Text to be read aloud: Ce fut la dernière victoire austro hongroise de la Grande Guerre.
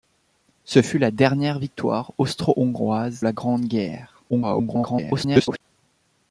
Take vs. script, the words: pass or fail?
fail